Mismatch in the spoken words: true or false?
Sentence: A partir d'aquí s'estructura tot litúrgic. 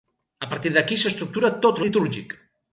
false